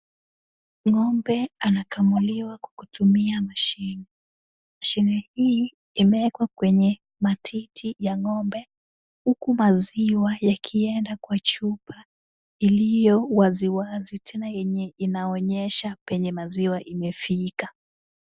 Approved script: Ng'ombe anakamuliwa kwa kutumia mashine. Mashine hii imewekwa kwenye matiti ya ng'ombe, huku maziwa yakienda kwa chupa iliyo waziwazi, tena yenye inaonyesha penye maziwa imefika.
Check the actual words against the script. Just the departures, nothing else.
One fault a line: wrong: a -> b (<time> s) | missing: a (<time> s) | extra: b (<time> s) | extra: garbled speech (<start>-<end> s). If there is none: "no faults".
no faults